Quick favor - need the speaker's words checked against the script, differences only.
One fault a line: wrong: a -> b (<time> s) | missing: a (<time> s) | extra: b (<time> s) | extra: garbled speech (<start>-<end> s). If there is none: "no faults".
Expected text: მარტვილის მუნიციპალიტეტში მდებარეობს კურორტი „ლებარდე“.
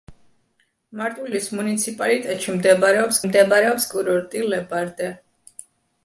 extra: მდებარეობს (3.3 s)